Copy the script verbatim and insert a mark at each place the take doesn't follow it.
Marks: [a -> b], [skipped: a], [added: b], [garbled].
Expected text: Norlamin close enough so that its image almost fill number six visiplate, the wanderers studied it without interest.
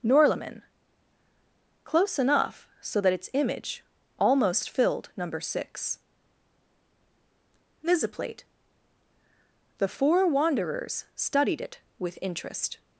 Norlamin close enough so that its image almost [fill -> filled] number six visiplate, the [added: four] wanderers studied it [without -> with] interest.